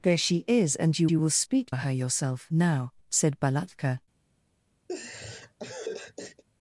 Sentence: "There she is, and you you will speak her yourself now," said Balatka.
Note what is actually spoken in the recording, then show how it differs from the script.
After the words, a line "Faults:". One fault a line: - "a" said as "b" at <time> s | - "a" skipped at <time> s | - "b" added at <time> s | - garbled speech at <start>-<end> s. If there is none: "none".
"There she is, and you you will speak her yourself now," said Balatka.
Faults:
none